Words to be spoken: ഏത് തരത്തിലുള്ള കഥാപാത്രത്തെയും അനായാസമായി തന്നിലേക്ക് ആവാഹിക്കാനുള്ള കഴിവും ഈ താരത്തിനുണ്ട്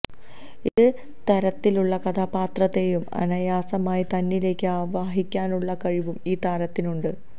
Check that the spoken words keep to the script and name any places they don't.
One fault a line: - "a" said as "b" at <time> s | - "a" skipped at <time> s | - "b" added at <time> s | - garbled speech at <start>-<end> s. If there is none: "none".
none